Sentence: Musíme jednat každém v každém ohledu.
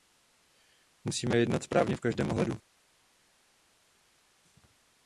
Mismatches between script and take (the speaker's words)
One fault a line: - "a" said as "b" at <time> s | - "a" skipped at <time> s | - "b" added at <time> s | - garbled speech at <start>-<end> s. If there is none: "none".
- "každém" said as "správně" at 1.6 s